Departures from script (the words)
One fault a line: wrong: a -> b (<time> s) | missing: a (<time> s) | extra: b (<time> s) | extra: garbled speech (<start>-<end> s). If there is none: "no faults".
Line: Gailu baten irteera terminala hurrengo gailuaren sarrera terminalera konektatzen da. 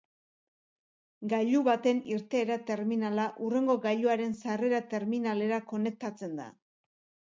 no faults